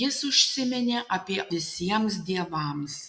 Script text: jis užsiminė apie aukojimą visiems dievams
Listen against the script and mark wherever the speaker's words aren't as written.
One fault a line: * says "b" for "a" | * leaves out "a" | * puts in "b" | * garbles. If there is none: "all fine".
* leaves out "aukojimą"